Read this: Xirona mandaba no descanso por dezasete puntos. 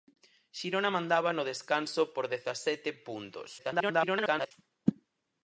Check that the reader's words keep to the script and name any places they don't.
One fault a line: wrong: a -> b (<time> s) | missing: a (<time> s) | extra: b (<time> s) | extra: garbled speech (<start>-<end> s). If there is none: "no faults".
extra: garbled speech (3.6-4.5 s)